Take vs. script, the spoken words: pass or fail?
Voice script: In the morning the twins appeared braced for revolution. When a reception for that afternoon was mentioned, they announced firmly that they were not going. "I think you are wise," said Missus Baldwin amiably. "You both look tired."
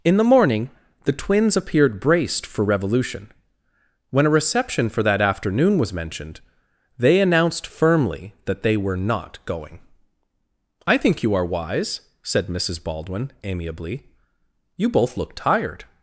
pass